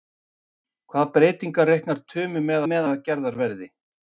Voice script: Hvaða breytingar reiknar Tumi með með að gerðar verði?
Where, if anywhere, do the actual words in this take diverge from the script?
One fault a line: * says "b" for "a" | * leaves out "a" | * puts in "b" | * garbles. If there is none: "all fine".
all fine